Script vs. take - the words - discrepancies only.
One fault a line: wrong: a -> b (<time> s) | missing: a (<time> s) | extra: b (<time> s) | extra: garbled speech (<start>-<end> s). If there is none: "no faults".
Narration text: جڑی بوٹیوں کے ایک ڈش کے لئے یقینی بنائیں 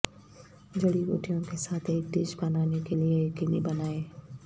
extra: ساتھ (1.6 s)
extra: بنانے (2.4 s)